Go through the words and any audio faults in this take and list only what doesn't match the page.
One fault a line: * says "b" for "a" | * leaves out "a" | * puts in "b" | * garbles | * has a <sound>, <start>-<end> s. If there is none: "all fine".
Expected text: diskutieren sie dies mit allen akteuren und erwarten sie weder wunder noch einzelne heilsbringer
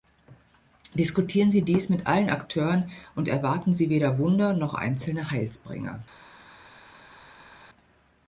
all fine